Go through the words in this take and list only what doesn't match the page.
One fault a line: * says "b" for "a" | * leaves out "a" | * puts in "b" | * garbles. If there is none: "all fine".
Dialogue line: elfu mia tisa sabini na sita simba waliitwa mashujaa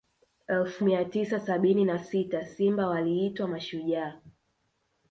all fine